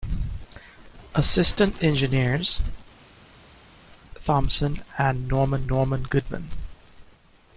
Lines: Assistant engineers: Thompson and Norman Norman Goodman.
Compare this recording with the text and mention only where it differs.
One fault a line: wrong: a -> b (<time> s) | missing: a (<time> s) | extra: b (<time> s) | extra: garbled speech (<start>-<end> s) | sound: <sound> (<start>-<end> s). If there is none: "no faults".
no faults